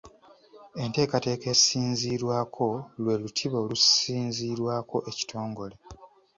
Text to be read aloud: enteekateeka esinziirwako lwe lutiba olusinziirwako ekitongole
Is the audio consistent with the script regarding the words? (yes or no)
yes